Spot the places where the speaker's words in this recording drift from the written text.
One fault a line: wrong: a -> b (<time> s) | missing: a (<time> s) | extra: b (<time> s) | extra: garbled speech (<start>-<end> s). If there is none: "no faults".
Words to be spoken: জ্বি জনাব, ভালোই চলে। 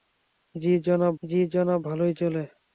extra: জ্বি জনাব (1.2 s)